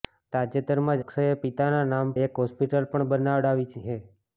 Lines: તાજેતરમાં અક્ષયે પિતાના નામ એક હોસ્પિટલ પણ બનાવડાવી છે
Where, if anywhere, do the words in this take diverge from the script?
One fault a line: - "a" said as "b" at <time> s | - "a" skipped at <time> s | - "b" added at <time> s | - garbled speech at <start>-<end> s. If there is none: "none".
none